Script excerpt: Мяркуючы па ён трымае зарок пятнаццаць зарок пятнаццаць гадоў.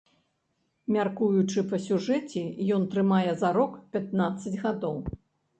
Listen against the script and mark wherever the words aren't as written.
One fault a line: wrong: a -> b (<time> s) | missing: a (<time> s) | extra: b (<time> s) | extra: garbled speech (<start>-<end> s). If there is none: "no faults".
extra: сюжэце (1.9 s)
missing: зарок пятнаццаць (4.6 s)